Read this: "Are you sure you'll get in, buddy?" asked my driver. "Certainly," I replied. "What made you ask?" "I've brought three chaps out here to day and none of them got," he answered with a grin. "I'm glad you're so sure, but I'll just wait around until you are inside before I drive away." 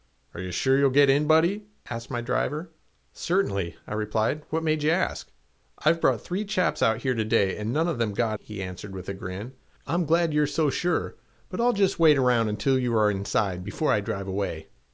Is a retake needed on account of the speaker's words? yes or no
no